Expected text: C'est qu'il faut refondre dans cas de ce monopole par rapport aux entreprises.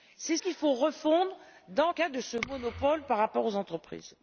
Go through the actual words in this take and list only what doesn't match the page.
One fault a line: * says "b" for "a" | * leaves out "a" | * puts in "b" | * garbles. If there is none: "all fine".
all fine